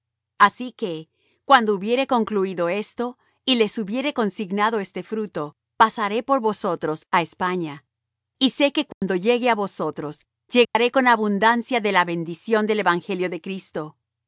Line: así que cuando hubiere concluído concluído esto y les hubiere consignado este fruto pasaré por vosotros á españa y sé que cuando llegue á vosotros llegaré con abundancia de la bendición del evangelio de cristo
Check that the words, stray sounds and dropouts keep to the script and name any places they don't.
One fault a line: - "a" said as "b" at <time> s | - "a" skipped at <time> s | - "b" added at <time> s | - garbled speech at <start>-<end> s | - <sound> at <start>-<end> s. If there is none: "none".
- "concluído" skipped at 2.7 s
- dropout at 8.9-9.0 s
- dropout at 10.6-10.8 s